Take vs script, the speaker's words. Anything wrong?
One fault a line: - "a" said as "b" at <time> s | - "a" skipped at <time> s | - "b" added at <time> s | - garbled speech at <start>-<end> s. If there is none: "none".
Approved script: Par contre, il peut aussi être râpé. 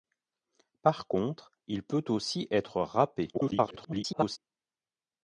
- garbled speech at 3.3-4.4 s